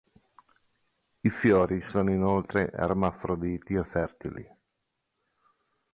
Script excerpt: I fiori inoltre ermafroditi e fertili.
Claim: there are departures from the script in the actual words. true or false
true